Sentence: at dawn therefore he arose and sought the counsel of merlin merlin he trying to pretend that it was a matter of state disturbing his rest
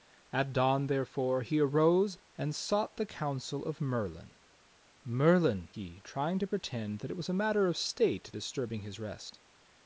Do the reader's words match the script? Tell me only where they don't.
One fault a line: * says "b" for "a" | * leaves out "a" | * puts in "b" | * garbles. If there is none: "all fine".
all fine